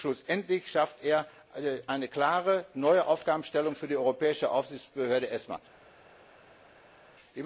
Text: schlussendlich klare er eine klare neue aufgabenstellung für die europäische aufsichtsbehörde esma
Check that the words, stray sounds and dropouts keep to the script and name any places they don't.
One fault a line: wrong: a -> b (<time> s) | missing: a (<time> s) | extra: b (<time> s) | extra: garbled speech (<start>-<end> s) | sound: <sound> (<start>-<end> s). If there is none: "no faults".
wrong: klare -> schafft (0.7 s)